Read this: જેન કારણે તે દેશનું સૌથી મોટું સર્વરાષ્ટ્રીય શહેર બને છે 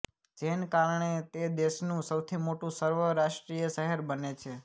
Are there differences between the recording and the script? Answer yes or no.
no